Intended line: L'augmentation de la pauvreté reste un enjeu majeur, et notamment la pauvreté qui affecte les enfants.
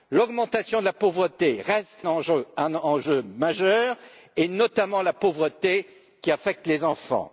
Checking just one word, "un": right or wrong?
wrong